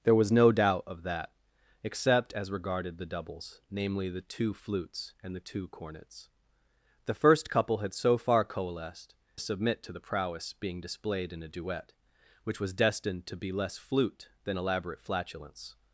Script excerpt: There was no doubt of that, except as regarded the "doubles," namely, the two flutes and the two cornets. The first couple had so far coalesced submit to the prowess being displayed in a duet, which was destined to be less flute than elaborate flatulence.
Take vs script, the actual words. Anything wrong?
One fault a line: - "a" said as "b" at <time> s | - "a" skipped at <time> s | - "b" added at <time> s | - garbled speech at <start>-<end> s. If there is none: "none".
none